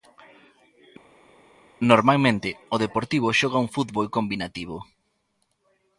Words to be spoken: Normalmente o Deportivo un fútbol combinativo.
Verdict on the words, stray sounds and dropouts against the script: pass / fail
fail